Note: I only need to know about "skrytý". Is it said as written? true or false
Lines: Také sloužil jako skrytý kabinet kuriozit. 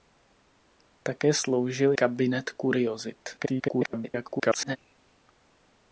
false